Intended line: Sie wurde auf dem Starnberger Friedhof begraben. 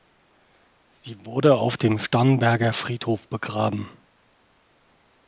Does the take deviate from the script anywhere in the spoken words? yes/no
no